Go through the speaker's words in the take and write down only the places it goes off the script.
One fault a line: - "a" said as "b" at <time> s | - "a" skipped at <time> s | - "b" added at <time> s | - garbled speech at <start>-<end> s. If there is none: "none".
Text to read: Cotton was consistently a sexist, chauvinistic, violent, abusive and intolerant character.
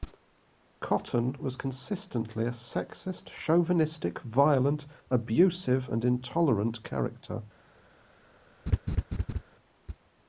none